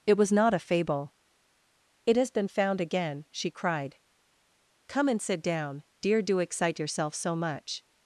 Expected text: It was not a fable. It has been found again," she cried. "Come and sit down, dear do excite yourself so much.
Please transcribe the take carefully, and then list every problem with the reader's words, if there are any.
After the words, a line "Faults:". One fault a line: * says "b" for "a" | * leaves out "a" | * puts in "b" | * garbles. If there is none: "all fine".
It was not a fable. It has been found again," she cried. "Come and sit down, dear do excite yourself so much.
Faults:
all fine